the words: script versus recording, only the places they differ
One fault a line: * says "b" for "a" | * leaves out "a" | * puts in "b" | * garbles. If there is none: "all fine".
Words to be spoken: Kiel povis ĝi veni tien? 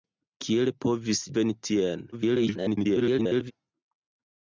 * leaves out "ĝi"
* garbles